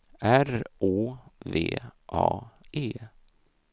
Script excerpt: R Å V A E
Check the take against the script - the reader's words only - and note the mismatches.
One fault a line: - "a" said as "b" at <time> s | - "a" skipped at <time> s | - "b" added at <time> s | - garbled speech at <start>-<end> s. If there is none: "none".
none